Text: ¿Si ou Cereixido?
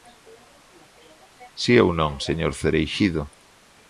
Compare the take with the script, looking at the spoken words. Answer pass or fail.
fail